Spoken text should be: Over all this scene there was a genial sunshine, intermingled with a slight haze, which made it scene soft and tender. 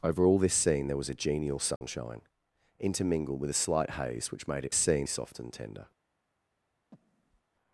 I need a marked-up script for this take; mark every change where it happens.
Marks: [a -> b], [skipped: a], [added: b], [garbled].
Over all this scene there was a genial sunshine, intermingled with a slight haze, which made it scene soft and tender.